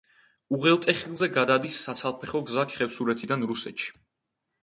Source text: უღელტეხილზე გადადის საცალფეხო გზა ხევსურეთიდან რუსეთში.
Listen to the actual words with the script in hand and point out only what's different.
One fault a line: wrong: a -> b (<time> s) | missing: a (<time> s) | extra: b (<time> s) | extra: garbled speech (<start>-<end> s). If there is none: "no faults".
no faults